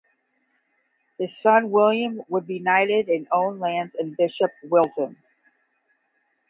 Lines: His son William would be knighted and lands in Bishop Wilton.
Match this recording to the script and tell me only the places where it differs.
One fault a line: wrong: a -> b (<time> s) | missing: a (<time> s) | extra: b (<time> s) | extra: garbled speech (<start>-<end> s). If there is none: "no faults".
extra: own (3.3 s)